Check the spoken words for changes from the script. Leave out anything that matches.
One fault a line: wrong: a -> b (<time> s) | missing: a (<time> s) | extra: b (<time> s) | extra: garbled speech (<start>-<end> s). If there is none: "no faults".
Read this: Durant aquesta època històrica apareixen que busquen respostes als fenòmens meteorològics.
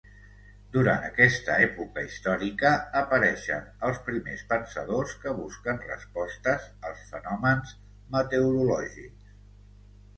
extra: els primers pensadors (3.9 s)